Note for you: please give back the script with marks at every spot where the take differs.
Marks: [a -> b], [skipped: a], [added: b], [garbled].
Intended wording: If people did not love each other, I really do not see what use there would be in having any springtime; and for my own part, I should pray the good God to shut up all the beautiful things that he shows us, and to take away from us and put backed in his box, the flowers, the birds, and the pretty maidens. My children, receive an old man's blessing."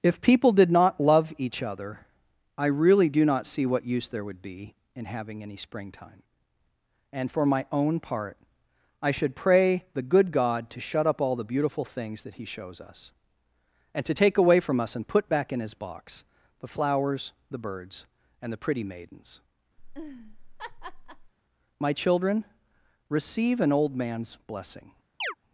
If people did not love each other, I really do not see what use there would be in having any springtime; and for my own part, I should pray the good God to shut up all the beautiful things that he shows us, and to take away from us and put [backed -> back] in his box, the flowers, the birds, and the pretty maidens. My children, receive an old man's blessing."